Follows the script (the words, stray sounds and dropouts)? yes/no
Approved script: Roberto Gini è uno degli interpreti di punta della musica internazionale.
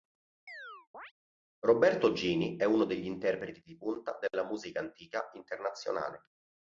no